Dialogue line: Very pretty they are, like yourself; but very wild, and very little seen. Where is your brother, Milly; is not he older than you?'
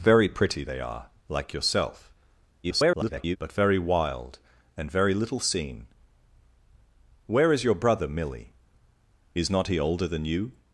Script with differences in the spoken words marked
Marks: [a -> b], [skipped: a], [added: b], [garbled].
Very pretty they are, like yourself; [garbled] but very wild, and very little seen. Where is your brother, Milly; is not he older than you?'